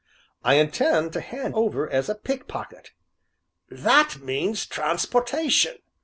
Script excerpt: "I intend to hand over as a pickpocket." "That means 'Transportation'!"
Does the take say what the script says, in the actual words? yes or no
yes